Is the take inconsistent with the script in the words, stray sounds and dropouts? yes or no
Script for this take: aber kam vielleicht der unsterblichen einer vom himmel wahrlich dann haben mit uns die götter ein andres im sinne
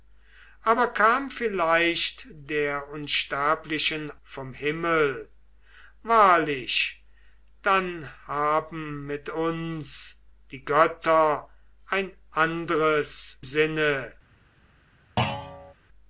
yes